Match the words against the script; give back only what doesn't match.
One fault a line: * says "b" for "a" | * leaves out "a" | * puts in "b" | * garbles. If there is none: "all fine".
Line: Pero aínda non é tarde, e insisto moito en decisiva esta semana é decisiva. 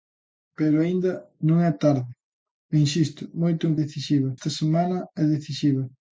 all fine